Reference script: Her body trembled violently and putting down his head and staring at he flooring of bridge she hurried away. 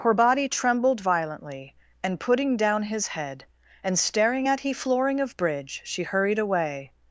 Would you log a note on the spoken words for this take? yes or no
no